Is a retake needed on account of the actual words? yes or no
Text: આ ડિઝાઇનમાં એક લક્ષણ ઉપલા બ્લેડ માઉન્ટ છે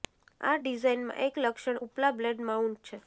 no